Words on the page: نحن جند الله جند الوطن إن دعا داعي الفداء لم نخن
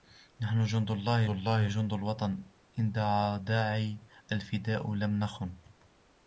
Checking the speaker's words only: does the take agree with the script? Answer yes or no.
no